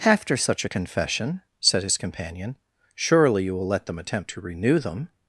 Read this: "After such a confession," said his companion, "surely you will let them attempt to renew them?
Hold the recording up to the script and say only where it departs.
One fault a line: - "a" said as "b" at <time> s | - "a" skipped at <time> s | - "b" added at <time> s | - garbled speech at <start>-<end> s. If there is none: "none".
none